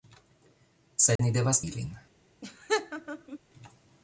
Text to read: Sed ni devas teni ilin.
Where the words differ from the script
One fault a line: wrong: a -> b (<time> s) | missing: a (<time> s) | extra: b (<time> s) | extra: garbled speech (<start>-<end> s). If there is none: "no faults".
missing: teni (1.6 s)